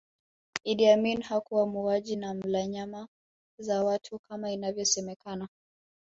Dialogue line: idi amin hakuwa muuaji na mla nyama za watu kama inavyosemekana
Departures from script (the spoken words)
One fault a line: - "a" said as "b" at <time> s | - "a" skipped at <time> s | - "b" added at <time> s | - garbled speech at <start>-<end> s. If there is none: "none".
none